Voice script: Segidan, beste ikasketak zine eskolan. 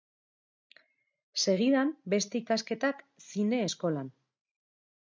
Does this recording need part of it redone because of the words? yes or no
no